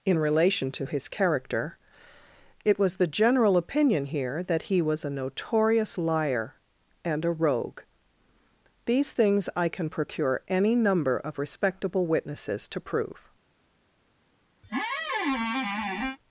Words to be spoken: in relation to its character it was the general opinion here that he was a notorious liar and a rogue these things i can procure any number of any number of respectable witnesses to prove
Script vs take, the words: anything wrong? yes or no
yes